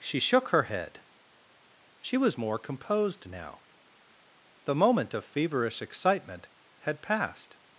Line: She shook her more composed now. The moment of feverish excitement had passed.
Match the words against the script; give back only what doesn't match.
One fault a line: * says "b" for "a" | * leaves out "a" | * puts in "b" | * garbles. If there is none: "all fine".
* puts in "head She was"